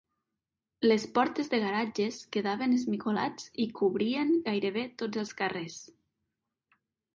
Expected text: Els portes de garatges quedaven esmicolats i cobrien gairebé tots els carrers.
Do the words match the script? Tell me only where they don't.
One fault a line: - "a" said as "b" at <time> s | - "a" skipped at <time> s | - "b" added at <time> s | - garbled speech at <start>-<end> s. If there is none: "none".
- "Els" said as "Les" at 0.8 s